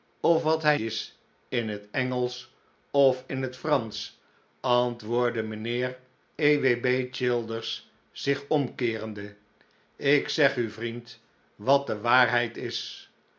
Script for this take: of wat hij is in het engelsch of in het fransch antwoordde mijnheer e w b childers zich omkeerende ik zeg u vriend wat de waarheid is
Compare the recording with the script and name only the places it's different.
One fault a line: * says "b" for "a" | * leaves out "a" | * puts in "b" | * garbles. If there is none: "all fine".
all fine